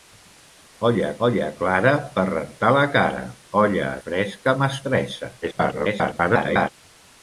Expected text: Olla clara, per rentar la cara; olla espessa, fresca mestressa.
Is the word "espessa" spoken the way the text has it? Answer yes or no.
no